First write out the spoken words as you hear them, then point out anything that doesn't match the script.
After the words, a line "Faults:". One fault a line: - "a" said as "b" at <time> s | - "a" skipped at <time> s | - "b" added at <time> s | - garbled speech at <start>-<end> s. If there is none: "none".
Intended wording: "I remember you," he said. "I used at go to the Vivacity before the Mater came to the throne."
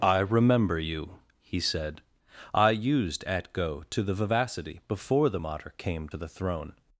"I remember you," he said. "I used at go to the Vivacity before the Mater came to the throne."
Faults:
none